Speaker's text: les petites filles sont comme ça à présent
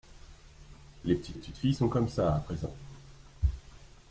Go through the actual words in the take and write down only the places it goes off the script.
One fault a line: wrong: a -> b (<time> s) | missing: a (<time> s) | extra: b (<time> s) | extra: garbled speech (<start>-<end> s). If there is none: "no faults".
extra: petites (1.3 s)